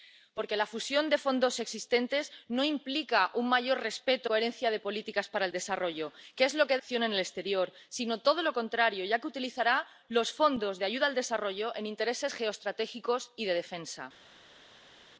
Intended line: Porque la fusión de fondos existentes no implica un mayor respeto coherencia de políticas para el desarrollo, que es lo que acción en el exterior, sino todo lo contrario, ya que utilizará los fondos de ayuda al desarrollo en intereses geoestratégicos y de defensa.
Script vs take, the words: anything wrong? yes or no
no